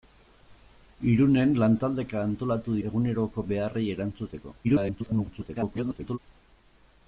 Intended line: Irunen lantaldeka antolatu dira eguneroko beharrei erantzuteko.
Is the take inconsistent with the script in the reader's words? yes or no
yes